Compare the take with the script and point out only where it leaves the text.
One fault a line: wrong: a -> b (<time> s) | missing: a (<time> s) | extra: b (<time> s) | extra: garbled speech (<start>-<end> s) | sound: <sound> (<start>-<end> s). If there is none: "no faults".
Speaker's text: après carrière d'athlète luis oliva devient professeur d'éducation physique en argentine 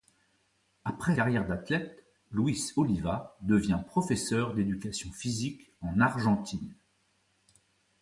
no faults